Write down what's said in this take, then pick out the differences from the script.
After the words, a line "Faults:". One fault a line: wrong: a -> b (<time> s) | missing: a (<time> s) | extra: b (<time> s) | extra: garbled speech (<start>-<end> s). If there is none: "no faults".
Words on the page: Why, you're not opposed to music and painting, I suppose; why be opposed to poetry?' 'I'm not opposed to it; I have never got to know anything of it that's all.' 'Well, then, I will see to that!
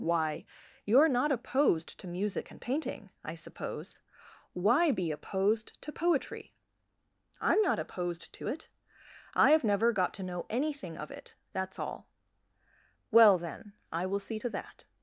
Why, you're not opposed to music and painting, I suppose; why be opposed to poetry?' 'I'm not opposed to it; I have never got to know anything of it that's all.' 'Well, then, I will see to that!
Faults:
no faults